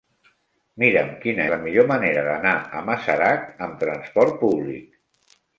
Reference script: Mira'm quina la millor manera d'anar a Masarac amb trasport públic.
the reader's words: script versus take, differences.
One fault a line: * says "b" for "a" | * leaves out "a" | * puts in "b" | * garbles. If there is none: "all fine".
all fine